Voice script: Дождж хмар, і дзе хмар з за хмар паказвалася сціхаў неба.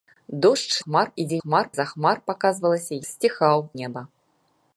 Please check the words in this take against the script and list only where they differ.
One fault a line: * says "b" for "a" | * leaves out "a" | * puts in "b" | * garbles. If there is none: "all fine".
all fine